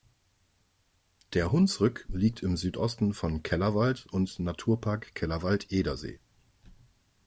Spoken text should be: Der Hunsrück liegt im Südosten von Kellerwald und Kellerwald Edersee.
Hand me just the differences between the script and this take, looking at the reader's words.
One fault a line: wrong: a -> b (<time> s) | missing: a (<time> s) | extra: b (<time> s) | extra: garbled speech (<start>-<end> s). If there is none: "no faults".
extra: Naturpark (4.4 s)